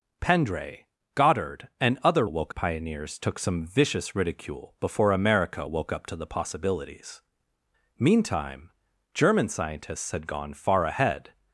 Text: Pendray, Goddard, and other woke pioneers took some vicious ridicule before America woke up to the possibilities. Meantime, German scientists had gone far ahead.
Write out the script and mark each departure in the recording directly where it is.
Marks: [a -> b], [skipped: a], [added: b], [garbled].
Pendray, Goddard, and other woke pioneers took some vicious ridicule before America woke up to the possibilities. Meantime, German scientists had gone far ahead.